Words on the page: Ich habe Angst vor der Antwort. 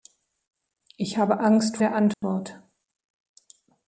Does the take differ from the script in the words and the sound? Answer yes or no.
yes